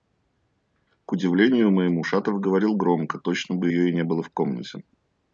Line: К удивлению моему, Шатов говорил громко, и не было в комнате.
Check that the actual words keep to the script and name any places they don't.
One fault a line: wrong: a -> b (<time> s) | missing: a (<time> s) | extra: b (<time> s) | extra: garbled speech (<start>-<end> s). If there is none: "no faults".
extra: точно бы ее (3.2 s)